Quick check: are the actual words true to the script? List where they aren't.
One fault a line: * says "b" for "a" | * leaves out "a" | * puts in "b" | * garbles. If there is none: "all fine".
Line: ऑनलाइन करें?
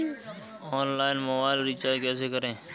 * puts in "मोबाइल रिचार्ज कैसे"